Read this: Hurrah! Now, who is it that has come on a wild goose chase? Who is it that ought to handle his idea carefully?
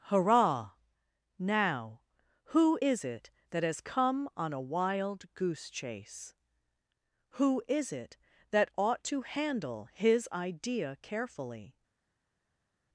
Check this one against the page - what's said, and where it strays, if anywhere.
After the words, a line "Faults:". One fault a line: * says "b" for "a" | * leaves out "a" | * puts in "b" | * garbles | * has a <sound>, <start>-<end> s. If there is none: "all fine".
Hurrah! Now, who is it that has come on a wild goose chase? Who is it that ought to handle his idea carefully?
Faults:
all fine